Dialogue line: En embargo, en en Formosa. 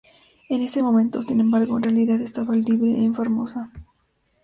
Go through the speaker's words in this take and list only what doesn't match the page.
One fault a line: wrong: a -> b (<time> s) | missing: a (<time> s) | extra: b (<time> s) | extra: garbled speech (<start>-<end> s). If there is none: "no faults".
extra: ese momento sin (0.6 s)
extra: realidad estaba libre (1.8 s)